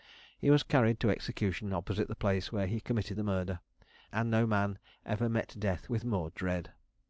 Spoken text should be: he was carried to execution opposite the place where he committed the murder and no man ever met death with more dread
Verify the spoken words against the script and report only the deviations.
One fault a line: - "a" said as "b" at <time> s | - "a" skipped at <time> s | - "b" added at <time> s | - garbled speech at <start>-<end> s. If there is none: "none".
none